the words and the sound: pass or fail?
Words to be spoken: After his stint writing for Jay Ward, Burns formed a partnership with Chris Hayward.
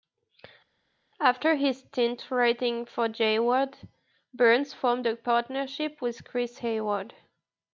pass